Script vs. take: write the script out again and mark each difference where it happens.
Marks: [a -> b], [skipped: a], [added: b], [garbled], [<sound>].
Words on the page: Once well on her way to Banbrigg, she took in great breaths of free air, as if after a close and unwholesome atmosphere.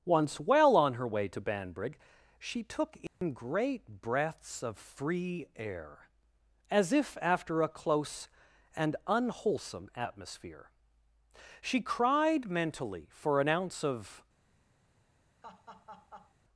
Once well on her way to Banbrigg, she took in [dropout] great breaths of free air, as if after a close and unwholesome atmosphere. [added: She cried mentally for an ounce of] [laugh]